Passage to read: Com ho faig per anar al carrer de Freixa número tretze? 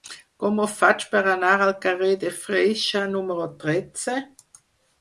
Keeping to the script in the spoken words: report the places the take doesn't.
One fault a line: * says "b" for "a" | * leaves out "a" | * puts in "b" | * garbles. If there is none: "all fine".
all fine